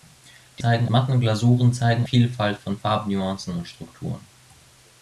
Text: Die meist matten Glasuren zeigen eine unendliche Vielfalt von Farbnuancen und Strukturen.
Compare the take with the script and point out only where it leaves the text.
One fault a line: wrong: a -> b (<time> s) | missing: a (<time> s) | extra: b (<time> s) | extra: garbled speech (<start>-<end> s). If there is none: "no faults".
wrong: meist -> zeigen (0.6 s)
missing: eine unendliche (2.1 s)